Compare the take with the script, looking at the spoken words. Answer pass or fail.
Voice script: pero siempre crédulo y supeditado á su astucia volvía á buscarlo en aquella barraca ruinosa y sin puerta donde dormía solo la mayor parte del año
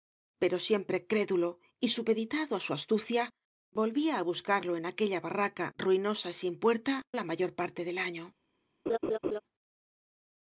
fail